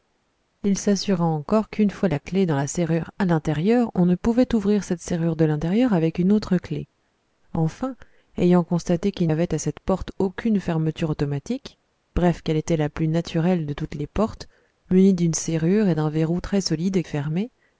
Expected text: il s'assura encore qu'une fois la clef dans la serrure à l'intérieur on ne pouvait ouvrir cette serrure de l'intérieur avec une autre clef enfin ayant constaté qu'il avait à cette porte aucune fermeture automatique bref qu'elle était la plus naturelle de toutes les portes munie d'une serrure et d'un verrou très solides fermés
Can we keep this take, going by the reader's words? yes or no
yes